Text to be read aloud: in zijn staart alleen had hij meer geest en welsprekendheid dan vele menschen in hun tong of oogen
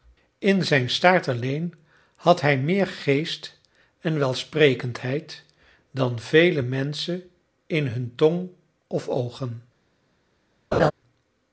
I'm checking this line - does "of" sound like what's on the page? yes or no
yes